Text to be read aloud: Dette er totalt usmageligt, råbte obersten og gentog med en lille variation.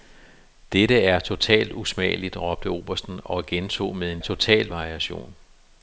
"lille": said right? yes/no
no